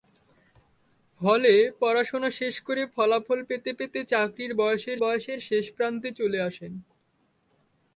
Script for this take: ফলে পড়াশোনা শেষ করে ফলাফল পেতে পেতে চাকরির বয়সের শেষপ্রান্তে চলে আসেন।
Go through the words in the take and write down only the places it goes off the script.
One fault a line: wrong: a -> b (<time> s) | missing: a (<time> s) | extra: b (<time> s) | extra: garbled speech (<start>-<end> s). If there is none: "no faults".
extra: বয়সের (5.0 s)